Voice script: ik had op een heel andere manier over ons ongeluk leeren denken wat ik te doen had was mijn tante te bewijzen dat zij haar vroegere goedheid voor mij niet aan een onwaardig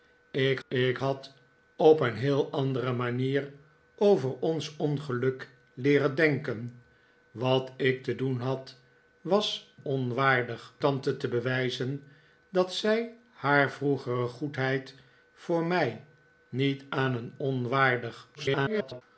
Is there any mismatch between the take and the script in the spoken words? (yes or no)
yes